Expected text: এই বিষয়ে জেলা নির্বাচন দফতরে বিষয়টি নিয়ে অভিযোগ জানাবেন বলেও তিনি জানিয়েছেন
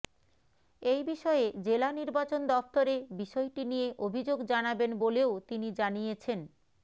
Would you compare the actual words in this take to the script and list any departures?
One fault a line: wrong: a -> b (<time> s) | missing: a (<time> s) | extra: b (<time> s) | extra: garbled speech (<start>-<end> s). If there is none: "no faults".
no faults